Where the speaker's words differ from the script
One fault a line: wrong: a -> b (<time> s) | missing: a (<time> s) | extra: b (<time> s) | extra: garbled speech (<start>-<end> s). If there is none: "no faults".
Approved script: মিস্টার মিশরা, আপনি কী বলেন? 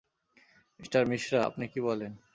no faults